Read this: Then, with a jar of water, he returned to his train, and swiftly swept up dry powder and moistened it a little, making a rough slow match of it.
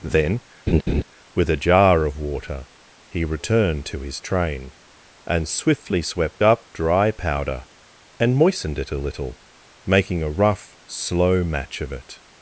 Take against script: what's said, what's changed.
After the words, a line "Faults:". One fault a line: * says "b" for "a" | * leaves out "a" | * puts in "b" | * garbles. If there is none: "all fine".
Then, with a jar of water, he returned to his train, and swiftly swept up dry powder and moistened it a little, making a rough slow match of it.
Faults:
all fine